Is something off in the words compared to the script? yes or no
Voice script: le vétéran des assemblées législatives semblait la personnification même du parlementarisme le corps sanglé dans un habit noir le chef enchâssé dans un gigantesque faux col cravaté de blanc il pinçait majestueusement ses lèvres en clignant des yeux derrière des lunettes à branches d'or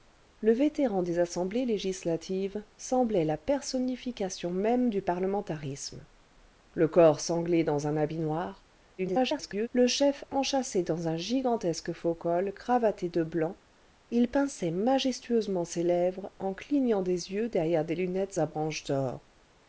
yes